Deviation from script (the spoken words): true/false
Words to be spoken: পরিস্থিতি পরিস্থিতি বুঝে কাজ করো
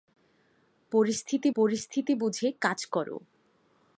false